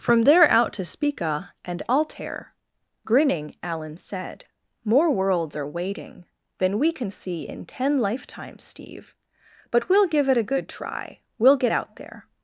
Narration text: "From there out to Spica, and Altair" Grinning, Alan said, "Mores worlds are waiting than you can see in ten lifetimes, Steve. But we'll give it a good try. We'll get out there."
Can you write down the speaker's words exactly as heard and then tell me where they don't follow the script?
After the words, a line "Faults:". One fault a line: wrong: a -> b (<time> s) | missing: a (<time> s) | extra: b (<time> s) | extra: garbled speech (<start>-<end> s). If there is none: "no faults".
"From there out to Spica, and Altair" Grinning, Alan said, "More worlds are waiting than we can see in ten lifetimes, Steve. But we'll give it a good try. We'll get out there."
Faults:
wrong: Mores -> More (4.8 s)
wrong: you -> we (6.8 s)